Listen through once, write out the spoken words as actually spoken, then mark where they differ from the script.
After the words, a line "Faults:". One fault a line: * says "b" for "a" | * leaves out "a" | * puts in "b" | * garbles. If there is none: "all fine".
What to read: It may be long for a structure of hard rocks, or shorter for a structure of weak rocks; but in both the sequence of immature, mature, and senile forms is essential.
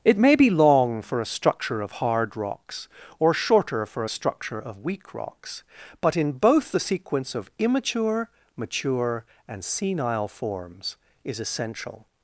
It may be long for a structure of hard rocks, or shorter for a structure of weak rocks; but in both the sequence of immature, mature, and senile forms is essential.
Faults:
all fine